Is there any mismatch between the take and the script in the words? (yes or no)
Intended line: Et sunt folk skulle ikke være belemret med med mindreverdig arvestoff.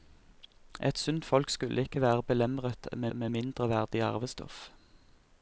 no